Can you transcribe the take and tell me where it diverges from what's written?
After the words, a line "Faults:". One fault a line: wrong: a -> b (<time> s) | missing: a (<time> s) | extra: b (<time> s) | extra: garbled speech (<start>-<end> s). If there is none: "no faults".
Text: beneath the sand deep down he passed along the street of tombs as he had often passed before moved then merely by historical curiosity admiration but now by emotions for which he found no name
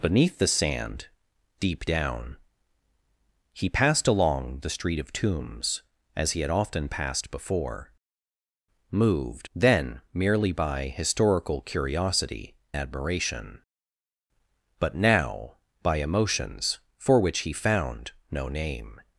beneath the sand deep down he passed along the street of tombs as he had often passed before moved then merely by historical curiosity admiration but now by emotions for which he found no name
Faults:
no faults